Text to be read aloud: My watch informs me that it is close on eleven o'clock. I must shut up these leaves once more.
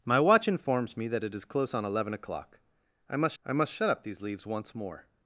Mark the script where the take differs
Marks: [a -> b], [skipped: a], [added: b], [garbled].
My watch informs me that it is close on eleven o'clock. I must [added: I must] shut up these leaves once more.